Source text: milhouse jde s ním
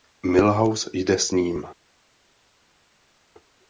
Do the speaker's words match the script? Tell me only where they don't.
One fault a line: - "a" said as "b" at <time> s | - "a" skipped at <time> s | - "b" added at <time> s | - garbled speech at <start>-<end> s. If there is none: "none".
none